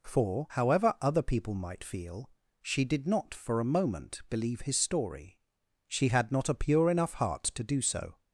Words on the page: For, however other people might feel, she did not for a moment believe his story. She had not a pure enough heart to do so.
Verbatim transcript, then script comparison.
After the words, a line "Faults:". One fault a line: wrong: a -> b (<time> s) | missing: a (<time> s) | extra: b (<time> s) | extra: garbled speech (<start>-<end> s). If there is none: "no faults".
For, however other people might feel, she did not for a moment believe his story. She had not a pure enough heart to do so.
Faults:
no faults